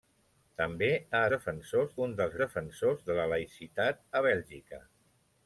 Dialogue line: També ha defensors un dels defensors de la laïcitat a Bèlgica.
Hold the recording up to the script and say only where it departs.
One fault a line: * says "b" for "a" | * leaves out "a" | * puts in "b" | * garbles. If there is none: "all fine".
all fine